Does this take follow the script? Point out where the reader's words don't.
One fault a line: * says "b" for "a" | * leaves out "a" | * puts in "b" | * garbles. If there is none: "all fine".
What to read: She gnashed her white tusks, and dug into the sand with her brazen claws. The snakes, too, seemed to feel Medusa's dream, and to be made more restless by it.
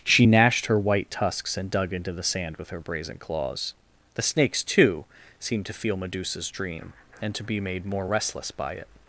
all fine